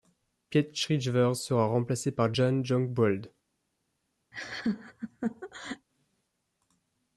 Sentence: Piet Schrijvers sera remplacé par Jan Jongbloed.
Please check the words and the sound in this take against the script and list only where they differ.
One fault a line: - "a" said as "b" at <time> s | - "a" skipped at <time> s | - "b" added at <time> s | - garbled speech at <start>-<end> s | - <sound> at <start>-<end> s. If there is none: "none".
- laugh at 4.3-5.9 s